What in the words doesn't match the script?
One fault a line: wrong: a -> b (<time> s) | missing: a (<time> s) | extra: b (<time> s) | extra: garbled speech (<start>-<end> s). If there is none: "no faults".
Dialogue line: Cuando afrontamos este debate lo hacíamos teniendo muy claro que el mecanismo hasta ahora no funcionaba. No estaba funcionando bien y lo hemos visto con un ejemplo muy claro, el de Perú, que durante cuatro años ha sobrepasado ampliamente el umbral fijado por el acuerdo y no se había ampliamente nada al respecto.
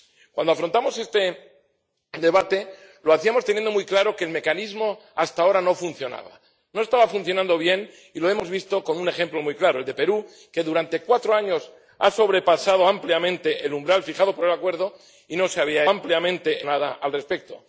no faults